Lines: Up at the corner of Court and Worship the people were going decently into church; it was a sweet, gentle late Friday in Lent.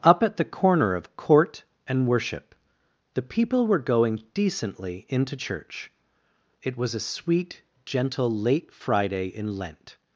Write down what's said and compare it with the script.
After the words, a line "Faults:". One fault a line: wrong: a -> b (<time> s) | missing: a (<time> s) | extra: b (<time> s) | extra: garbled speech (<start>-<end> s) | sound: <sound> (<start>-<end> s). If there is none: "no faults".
Up at the corner of Court and Worship the people were going decently into church; it was a sweet, gentle late Friday in Lent.
Faults:
no faults